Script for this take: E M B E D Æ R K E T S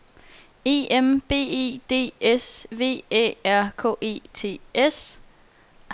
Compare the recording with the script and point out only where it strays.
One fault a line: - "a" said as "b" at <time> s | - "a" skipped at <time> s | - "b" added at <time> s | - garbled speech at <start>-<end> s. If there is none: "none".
- "S V" added at 2.2 s